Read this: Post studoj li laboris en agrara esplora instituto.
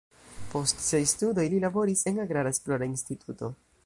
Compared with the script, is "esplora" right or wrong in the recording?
right